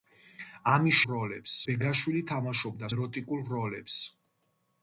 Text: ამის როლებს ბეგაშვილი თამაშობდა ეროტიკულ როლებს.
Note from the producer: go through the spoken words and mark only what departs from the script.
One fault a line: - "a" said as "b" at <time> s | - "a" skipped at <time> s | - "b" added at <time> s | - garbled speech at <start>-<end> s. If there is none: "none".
none